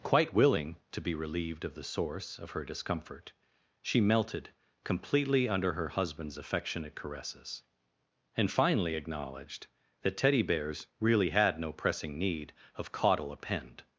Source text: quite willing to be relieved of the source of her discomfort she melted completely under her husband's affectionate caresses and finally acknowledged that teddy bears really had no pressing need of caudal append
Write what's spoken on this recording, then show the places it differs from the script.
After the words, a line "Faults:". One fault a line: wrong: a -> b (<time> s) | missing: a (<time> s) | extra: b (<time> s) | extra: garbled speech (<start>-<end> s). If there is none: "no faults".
quite willing to be relieved of the source of her discomfort she melted completely under her husband's affectionate caresses and finally acknowledged that teddy bears really had no pressing need of caudal append
Faults:
no faults